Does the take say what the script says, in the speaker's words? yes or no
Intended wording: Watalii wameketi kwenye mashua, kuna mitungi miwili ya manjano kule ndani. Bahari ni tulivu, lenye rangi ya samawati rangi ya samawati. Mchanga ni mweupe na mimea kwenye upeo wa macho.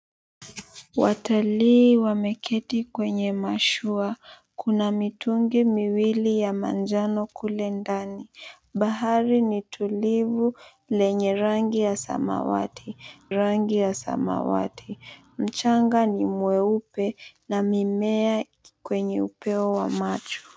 yes